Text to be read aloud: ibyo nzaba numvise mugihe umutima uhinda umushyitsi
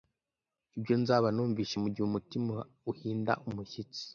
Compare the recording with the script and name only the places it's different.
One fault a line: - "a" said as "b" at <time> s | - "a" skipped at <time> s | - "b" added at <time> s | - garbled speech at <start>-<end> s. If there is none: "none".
none